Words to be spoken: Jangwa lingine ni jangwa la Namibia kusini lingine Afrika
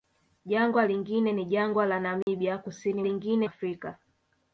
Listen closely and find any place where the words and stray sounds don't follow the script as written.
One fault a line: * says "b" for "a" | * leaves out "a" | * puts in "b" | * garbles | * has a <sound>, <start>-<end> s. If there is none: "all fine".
* has a dropout, 2.2-2.3 s